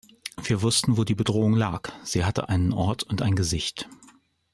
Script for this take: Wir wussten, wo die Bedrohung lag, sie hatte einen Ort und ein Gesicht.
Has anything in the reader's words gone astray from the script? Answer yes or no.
no